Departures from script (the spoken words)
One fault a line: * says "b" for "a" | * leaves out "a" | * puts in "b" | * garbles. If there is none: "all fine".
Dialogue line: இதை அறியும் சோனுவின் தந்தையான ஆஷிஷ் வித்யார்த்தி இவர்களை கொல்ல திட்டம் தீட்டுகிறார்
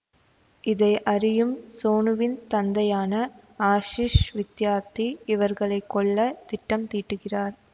all fine